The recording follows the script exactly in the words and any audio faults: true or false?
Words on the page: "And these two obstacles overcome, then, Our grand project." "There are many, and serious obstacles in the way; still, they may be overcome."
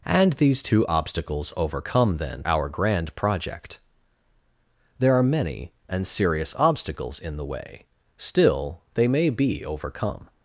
true